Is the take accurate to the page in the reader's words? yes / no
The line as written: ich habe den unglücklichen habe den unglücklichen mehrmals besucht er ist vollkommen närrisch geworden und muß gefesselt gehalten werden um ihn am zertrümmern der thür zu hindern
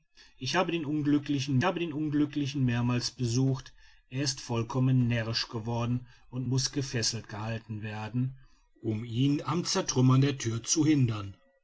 yes